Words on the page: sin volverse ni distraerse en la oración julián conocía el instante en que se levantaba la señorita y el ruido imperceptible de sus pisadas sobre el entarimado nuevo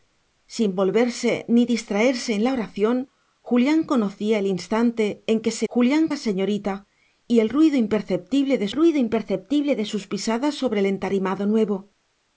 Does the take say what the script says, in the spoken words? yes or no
no